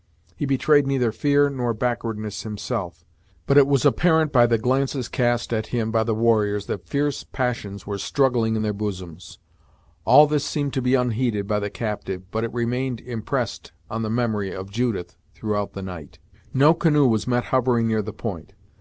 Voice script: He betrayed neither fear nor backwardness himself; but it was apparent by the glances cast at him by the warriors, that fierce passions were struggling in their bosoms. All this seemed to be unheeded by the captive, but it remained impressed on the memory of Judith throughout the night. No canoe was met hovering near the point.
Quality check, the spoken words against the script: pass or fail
pass